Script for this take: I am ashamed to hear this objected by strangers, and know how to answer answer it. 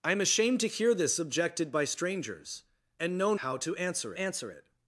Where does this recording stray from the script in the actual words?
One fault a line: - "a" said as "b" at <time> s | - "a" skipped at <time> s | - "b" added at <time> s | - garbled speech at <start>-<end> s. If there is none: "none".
none